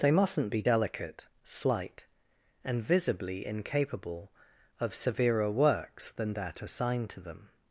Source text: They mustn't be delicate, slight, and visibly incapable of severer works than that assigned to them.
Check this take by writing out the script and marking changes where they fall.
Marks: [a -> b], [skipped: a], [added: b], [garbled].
They mustn't be delicate, slight, and visibly incapable of severer works than that assigned to them.